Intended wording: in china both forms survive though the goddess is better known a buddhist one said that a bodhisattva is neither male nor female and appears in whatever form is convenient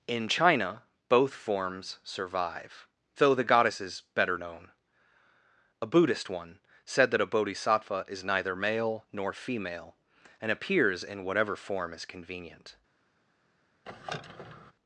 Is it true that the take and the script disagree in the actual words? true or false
false